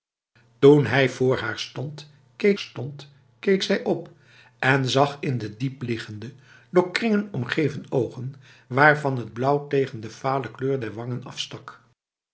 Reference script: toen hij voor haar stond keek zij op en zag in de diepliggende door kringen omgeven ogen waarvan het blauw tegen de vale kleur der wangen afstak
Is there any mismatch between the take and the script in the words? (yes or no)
yes